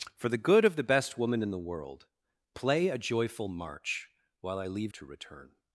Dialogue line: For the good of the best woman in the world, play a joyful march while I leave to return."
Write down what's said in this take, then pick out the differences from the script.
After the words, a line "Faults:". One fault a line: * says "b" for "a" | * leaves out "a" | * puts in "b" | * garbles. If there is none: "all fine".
For the good of the best woman in the world, play a joyful march while I leave to return."
Faults:
all fine